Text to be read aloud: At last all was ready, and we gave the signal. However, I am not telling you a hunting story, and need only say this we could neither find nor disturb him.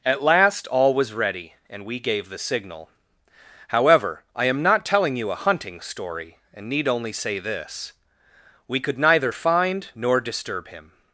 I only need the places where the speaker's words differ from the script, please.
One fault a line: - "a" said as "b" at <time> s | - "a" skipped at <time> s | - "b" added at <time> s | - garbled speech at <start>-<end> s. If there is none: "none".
none